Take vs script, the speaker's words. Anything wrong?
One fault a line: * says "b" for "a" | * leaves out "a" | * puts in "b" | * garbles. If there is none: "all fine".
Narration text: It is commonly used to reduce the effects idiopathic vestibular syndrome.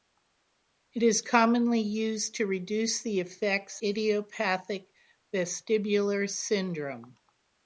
all fine